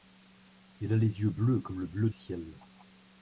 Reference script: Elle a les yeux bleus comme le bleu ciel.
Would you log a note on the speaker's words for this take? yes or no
no